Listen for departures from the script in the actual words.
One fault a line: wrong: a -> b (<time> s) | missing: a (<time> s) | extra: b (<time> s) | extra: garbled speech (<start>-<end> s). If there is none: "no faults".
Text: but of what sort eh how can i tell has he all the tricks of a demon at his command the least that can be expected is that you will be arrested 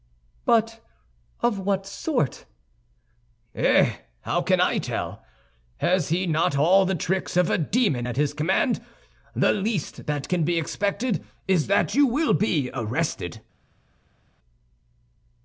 extra: not (6.2 s)